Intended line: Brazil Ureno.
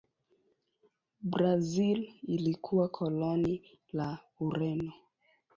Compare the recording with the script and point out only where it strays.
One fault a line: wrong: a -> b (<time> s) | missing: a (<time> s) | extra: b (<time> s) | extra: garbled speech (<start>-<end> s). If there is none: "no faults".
extra: ilikuwa koloni la (2.2 s)